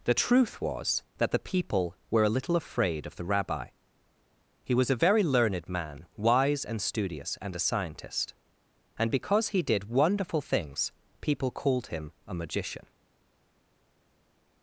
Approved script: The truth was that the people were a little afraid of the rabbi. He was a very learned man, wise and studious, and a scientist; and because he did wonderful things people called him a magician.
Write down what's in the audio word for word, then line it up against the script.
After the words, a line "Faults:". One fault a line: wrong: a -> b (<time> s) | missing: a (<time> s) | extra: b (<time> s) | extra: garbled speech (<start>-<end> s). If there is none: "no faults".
The truth was that the people were a little afraid of the rabbi. He was a very learned man, wise and studious, and a scientist; and because he did wonderful things people called him a magician.
Faults:
no faults